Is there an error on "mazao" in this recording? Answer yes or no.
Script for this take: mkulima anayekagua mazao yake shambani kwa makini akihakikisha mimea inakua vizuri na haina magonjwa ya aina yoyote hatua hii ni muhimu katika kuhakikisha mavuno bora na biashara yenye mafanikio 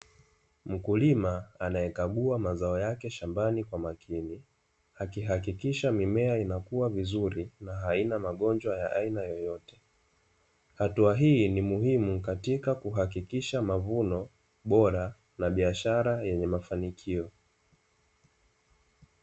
no